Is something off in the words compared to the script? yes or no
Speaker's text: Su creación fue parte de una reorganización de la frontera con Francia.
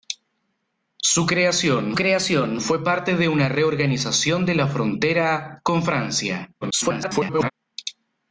yes